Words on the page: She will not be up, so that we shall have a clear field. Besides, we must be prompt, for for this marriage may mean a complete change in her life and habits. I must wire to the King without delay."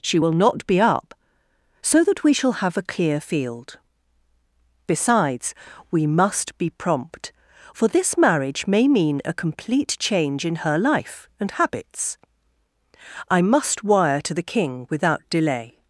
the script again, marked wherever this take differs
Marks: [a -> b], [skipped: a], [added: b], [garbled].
She will not be up, so that we shall have a clear field. Besides, we must be prompt, for [skipped: for] this marriage may mean a complete change in her life and habits. I must wire to the King without delay."